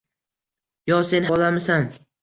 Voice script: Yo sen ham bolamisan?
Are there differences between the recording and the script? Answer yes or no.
yes